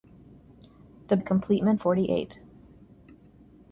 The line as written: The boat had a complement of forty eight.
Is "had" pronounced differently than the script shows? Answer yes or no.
yes